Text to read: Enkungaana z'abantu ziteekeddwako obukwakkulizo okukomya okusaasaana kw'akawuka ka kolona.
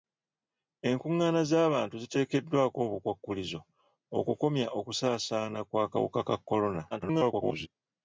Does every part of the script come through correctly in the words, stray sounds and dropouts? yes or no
no